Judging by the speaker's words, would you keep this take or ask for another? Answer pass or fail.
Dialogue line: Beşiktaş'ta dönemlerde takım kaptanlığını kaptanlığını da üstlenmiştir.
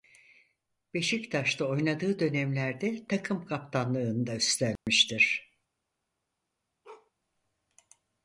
fail